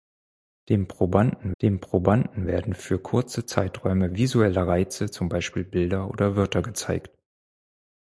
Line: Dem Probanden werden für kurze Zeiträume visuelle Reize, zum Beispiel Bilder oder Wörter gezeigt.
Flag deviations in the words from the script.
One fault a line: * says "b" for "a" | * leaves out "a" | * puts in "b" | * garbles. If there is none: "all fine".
* puts in "dem Probanden"